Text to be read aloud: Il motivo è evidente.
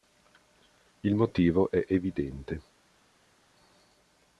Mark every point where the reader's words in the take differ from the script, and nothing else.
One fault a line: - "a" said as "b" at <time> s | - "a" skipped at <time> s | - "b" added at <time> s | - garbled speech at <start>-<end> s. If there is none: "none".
none